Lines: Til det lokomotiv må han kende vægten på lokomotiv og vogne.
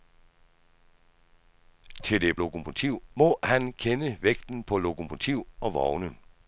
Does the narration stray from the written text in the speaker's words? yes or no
no